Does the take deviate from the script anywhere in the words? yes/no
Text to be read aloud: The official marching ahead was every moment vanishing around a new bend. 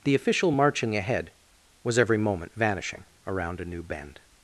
no